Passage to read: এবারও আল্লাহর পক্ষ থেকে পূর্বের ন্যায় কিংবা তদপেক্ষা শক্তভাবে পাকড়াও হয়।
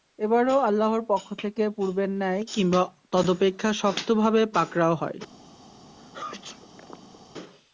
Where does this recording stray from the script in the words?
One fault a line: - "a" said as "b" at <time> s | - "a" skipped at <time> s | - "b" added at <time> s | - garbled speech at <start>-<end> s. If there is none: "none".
none